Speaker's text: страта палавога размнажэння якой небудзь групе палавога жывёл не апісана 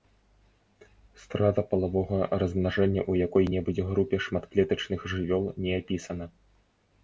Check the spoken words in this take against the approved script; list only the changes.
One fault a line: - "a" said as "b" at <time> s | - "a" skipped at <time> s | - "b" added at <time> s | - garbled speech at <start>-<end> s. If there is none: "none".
- "ў" added at 3.1 s
- "палавога" said as "шматклетачных" at 4.3 s